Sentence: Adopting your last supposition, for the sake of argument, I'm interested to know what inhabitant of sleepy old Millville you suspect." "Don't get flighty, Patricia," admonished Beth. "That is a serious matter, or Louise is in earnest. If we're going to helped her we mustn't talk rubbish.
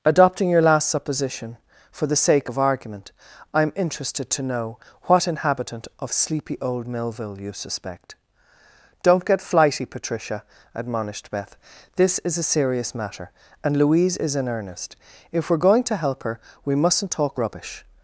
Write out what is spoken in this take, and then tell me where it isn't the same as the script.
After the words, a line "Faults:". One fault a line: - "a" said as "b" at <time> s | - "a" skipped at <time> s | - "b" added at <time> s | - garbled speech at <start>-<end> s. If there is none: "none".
Adopting your last supposition, for the sake of argument, I'm interested to know what inhabitant of sleepy old Millville you suspect." "Don't get flighty, Patricia," admonished Beth. "This is a serious matter, and Louise is in earnest. If we're going to help her we mustn't talk rubbish.
Faults:
- "That" said as "This" at 12.0 s
- "or" said as "and" at 13.6 s
- "helped" said as "help" at 16.0 s